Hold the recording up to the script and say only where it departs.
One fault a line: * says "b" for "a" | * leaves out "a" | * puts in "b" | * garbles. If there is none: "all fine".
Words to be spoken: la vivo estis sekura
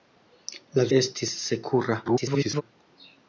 * leaves out "vivo"
* garbles